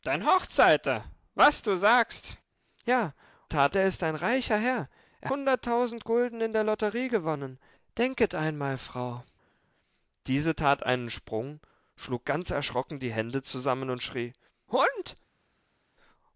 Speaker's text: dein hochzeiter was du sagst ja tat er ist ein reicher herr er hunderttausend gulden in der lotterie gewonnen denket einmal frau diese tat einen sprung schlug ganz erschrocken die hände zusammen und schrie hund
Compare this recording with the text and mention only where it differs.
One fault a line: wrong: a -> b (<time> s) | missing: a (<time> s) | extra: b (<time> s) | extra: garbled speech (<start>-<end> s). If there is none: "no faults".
no faults